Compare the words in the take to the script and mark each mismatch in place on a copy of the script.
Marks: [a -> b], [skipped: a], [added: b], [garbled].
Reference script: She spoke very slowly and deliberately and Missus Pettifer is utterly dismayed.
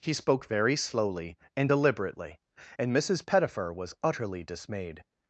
[She -> He] spoke very slowly and deliberately and Missus Pettifer [is -> was] utterly dismayed.